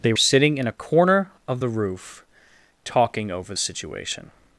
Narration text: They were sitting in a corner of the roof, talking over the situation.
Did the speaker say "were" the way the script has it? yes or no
no